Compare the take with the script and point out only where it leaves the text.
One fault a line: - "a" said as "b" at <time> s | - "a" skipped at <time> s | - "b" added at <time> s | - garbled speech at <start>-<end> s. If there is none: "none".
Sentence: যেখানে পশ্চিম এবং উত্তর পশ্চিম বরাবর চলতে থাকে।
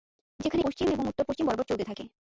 none